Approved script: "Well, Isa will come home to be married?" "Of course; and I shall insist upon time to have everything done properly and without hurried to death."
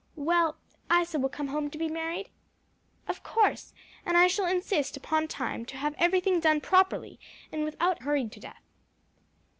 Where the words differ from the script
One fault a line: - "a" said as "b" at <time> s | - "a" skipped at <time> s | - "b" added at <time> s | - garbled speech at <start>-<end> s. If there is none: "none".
none